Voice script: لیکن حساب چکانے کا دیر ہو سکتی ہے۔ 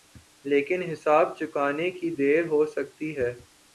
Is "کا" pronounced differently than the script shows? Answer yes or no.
yes